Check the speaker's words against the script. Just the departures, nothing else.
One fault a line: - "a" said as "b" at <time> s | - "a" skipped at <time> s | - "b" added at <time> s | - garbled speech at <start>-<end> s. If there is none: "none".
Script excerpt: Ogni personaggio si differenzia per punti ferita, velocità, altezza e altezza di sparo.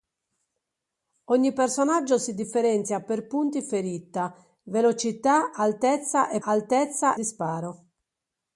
none